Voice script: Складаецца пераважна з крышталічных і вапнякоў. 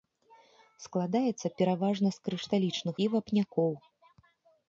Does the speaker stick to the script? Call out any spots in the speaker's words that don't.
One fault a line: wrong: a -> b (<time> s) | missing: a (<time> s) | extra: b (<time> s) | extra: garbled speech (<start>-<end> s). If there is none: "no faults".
no faults